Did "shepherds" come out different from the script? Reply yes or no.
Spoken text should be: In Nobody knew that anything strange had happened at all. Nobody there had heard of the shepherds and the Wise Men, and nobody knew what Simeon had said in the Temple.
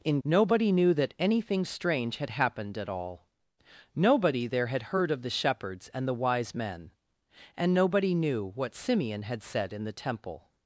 no